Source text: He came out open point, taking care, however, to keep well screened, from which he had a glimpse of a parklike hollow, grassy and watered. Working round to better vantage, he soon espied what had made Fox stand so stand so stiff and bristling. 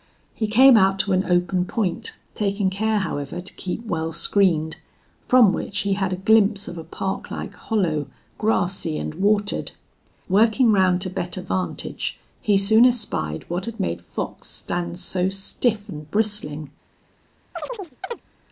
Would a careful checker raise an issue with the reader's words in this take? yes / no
yes